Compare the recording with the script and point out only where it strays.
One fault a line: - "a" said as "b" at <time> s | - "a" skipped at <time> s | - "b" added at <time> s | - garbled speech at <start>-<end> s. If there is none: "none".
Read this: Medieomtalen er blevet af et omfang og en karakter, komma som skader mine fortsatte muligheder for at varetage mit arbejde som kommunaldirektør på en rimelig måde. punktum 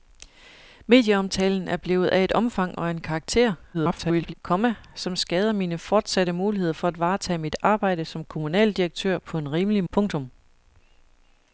- garbled speech at 3.7-4.3 s
- "måde" skipped at 9.8 s